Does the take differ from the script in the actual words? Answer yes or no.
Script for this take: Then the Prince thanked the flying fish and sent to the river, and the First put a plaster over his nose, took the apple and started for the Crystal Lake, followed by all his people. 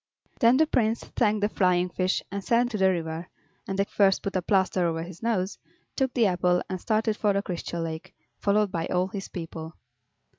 no